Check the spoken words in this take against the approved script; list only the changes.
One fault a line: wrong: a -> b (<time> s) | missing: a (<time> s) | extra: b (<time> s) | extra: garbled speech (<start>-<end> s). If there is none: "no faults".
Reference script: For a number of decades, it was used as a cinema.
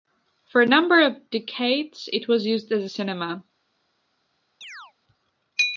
no faults